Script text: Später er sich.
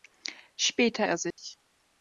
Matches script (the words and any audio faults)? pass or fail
fail